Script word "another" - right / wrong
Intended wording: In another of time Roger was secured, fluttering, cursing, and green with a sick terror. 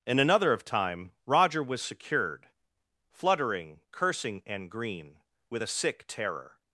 right